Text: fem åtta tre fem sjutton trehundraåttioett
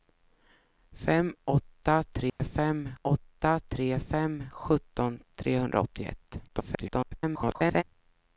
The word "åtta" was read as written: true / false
true